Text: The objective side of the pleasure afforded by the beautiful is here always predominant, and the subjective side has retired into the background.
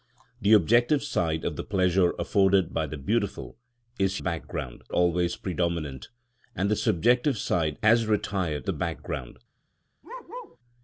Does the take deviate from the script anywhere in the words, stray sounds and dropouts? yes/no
yes